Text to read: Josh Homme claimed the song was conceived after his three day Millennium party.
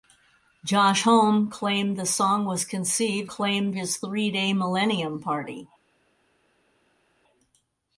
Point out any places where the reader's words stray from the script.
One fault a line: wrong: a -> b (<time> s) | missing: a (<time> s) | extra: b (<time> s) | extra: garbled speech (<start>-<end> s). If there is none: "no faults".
wrong: after -> claimed (3.3 s)